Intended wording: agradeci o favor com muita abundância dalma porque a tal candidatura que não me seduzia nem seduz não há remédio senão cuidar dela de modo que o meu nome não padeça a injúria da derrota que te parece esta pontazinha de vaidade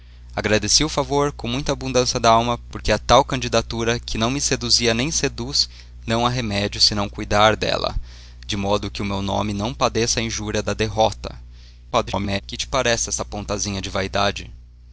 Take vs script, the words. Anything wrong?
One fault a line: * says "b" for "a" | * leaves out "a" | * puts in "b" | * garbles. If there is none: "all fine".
* garbles